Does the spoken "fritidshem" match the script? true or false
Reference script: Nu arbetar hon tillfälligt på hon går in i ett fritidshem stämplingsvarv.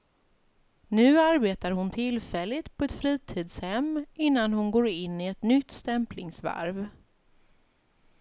false